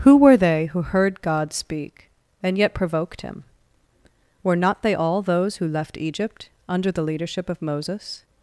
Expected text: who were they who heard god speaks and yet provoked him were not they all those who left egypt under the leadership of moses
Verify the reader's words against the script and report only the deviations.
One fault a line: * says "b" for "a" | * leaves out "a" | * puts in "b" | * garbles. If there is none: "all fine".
* says "speak" for "speaks"